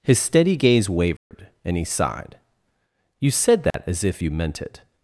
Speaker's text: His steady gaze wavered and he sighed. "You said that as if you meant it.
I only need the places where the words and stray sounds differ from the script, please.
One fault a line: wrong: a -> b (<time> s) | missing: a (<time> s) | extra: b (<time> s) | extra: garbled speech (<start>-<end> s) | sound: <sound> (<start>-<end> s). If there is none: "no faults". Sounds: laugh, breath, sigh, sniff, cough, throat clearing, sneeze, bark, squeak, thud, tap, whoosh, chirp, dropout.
sound: dropout (1.2-1.3 s)
sound: dropout (3.7-3.7 s)